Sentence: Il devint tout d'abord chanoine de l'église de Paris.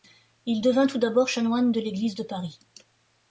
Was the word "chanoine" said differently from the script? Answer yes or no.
no